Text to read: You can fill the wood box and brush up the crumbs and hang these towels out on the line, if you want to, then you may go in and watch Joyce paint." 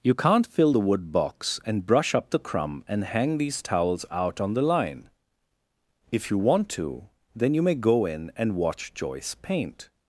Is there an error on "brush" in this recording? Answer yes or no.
no